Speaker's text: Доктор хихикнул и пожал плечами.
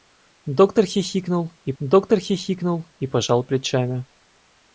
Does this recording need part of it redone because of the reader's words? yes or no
yes